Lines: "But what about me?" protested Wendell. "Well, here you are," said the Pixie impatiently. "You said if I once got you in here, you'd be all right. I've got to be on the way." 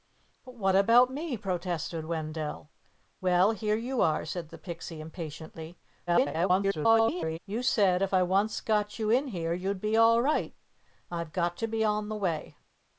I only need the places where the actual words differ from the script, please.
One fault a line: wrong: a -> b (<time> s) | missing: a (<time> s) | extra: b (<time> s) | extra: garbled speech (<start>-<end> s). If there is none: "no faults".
extra: garbled speech (6.1-7.4 s)